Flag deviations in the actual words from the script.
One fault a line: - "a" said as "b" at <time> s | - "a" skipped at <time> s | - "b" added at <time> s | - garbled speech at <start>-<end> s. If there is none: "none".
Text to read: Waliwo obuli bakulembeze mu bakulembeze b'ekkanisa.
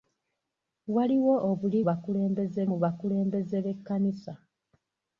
none